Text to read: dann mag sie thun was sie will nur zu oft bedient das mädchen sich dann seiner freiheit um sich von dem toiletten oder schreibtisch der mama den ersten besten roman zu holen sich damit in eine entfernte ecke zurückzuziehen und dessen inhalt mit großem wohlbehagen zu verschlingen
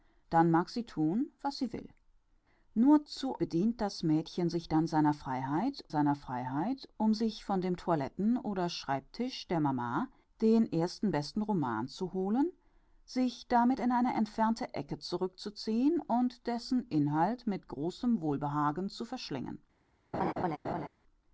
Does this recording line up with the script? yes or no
no